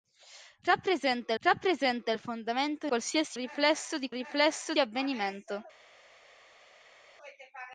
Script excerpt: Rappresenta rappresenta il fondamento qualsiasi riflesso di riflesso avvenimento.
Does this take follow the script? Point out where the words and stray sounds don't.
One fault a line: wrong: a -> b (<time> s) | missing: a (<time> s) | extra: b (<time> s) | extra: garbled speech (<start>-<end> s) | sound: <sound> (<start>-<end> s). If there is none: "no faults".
no faults